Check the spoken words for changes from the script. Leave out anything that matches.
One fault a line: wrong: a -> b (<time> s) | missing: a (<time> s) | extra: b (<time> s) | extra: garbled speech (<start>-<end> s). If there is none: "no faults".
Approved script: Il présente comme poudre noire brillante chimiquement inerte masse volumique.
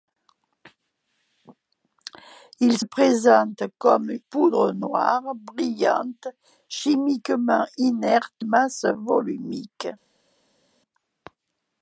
no faults